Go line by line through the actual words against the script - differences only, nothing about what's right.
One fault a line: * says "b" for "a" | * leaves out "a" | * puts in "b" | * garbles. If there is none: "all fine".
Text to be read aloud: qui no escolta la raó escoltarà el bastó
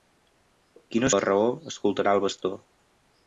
* leaves out "escolta"